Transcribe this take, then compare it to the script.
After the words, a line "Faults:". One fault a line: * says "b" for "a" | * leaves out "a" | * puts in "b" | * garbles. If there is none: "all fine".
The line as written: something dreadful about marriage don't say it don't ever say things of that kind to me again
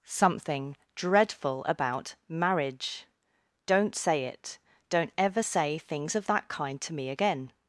something dreadful about marriage don't say it don't ever say things of that kind to me again
Faults:
all fine